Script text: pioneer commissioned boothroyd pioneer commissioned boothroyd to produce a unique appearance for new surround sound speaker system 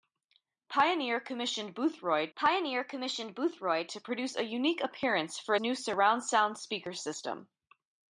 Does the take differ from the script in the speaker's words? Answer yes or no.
no